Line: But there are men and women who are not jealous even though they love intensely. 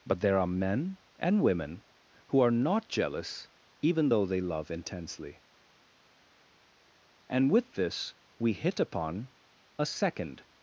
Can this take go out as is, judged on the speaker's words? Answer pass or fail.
fail